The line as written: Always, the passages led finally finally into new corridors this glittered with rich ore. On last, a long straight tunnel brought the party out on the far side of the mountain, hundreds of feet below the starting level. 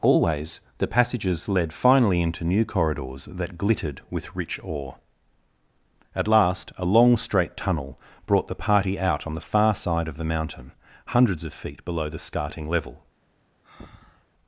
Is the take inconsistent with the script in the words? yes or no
yes